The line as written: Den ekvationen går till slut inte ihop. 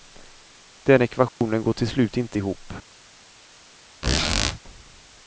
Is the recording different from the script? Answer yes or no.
no